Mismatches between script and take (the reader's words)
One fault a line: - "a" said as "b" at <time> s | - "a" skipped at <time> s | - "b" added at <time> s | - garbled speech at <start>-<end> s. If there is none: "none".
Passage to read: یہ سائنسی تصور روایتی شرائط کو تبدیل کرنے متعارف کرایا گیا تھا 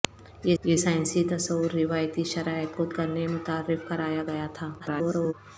- "یہ" added at 0.6 s
- "تبدیل" skipped at 2.8 s
- garbled speech at 4.8-5.3 s